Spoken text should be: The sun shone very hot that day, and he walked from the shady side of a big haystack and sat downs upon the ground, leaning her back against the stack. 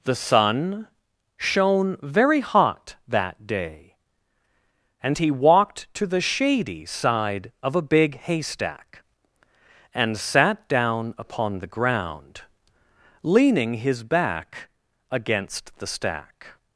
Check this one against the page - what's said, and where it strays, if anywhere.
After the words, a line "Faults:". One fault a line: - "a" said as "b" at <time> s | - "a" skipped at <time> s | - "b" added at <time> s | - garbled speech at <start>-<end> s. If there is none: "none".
The sun shone very hot that day, and he walked to the shady side of a big haystack and sat down upon the ground, leaning his back against the stack.
Faults:
- "from" said as "to" at 6.0 s
- "downs" said as "down" at 10.7 s
- "her" said as "his" at 13.7 s